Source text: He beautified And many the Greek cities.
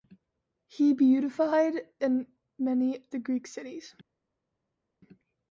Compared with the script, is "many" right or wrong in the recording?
right